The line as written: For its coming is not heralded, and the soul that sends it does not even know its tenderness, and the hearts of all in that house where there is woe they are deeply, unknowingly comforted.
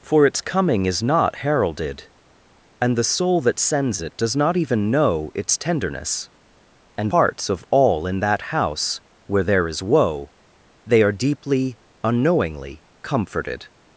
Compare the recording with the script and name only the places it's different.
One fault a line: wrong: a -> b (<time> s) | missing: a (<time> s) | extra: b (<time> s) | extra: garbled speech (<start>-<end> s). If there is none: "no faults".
missing: the (7.1 s)